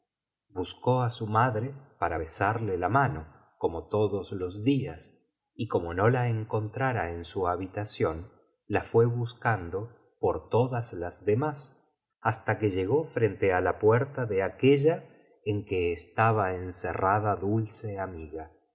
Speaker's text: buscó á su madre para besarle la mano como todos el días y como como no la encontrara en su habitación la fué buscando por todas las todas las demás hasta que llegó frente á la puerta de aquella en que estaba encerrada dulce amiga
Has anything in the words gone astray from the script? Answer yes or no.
yes